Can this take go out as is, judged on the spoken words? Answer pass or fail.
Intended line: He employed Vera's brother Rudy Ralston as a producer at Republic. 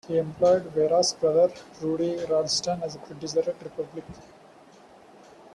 pass